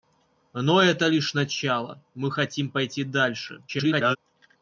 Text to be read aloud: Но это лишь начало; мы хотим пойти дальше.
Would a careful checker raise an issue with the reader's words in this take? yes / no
yes